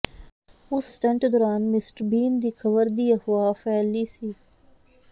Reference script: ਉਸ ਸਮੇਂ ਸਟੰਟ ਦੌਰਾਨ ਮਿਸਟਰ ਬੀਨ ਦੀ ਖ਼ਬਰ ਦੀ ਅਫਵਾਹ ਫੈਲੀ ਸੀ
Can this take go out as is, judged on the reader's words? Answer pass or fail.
fail